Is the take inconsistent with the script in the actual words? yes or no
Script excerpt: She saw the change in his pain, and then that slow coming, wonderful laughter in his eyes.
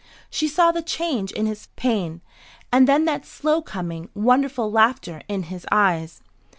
no